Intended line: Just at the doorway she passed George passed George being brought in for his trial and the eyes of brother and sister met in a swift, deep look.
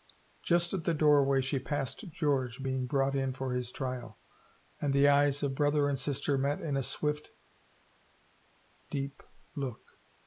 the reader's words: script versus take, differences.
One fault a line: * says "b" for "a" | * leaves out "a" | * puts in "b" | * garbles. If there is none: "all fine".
* leaves out "passed George"